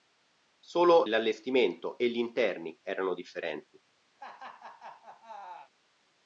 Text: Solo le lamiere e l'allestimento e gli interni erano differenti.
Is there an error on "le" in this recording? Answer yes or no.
yes